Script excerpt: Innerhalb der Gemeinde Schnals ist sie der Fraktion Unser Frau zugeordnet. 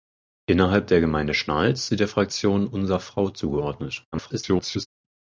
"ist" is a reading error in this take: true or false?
true